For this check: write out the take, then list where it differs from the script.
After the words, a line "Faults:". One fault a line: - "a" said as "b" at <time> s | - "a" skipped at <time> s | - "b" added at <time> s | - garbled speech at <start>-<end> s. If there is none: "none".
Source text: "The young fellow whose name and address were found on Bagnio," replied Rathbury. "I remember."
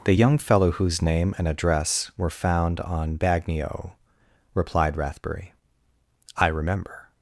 "The young fellow whose name and address were found on Bagnio," replied Rathbury. "I remember."
Faults:
none